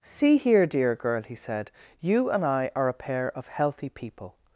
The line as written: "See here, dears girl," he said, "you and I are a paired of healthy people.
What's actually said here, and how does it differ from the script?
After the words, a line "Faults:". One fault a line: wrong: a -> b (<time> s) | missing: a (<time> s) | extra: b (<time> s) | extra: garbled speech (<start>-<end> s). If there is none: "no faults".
"See here, dear girl," he said, "you and I are a pair of healthy people.
Faults:
wrong: dears -> dear (0.7 s)
wrong: paired -> pair (2.9 s)